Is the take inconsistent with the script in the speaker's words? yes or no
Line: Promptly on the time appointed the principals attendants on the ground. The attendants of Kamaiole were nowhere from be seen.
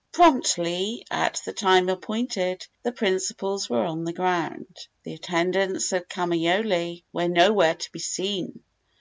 yes